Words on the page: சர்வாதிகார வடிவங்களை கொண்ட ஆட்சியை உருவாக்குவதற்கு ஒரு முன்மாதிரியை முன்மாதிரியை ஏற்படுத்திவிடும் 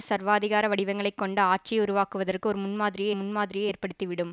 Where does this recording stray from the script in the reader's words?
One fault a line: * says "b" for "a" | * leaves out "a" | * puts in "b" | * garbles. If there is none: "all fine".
all fine